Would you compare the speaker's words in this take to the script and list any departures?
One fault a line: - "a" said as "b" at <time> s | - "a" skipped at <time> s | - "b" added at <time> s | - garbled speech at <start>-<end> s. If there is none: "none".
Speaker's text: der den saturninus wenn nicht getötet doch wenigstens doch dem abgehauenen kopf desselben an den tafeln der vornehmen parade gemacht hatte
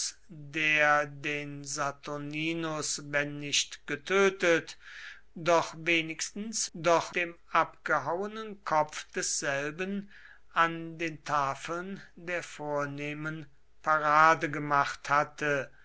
none